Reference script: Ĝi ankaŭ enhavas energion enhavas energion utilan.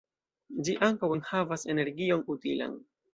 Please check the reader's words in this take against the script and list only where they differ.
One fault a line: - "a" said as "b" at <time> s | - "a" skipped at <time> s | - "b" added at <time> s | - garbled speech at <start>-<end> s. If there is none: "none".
- "enhavas energion" skipped at 2.2 s